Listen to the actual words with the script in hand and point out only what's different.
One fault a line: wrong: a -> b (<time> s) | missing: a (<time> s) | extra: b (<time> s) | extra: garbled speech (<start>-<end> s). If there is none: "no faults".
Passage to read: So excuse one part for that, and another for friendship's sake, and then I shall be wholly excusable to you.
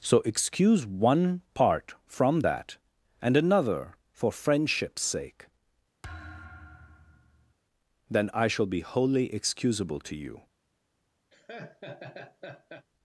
wrong: for -> from (2.1 s)
missing: and (5.5 s)